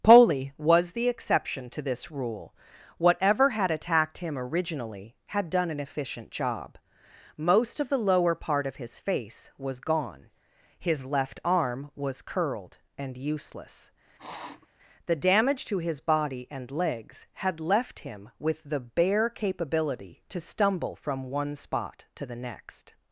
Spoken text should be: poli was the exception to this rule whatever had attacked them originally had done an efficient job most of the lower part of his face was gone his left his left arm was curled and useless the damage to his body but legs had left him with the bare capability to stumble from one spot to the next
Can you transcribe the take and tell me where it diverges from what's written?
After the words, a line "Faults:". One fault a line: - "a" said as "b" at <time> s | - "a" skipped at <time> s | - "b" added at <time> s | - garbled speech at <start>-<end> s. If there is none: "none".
poli was the exception to this rule whatever had attacked him originally had done an efficient job most of the lower part of his face was gone his left arm was curled and useless the damage to his body and legs had left him with the bare capability to stumble from one spot to the next
Faults:
- "them" said as "him" at 4.2 s
- "his left" skipped at 11.4 s
- "but" said as "and" at 16.5 s